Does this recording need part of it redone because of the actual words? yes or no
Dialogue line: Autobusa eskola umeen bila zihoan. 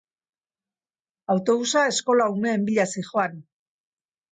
no